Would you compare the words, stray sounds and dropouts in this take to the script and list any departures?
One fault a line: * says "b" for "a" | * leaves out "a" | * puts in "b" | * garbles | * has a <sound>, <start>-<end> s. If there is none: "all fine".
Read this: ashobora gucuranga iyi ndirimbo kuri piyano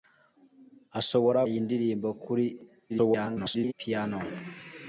* leaves out "gucuranga"
* garbles